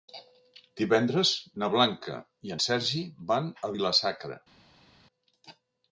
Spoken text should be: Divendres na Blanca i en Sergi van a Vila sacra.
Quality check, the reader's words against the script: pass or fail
pass